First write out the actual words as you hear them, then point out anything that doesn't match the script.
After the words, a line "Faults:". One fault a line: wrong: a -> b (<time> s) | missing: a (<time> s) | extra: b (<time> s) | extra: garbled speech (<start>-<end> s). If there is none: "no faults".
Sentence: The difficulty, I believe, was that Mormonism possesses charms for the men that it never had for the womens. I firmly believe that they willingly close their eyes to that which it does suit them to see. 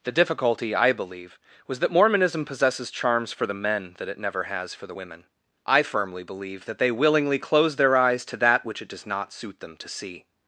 The difficulty, I believe, was that Mormonism possesses charms for the men that it never has for the women. I firmly believe that they willingly close their eyes to that which it does not suit them to see.
Faults:
wrong: had -> has (4.4 s)
wrong: womens -> women (4.9 s)
extra: not (9.0 s)